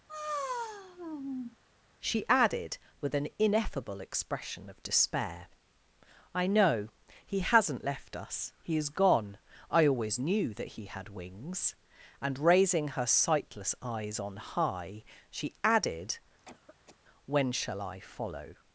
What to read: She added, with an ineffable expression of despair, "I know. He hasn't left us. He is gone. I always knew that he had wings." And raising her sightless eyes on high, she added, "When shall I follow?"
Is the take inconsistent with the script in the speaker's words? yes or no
no